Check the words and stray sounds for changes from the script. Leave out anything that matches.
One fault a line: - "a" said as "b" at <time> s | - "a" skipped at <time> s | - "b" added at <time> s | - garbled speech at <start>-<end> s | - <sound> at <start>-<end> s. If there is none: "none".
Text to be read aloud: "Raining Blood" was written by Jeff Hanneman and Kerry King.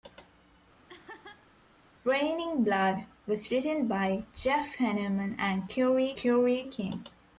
- laugh at 0.9-1.5 s
- "Kerry" added at 6.1 s